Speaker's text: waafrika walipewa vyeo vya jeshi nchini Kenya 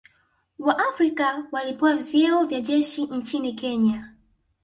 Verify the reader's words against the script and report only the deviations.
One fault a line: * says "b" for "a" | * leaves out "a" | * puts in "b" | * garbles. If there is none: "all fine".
all fine